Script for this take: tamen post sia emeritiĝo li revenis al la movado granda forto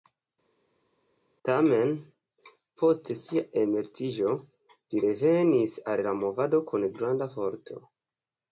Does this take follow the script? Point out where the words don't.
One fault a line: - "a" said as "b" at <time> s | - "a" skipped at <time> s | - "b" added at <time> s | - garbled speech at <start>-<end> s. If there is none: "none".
- "kun" added at 6.7 s